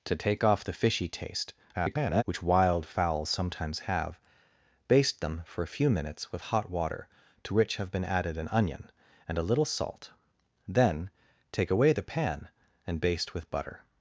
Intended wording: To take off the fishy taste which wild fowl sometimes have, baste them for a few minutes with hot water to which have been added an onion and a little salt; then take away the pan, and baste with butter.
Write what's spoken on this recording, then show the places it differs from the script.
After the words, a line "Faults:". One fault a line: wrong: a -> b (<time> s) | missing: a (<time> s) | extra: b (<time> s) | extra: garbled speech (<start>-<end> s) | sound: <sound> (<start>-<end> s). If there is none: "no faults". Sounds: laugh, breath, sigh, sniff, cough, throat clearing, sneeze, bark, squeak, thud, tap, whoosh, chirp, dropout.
To take off the fishy taste [garbled] which wild fowl sometimes have, baste them for a few minutes with hot water to which have been added an onion and a little salt; then take away the pan, and baste with butter.
Faults:
extra: garbled speech (1.7-2.2 s)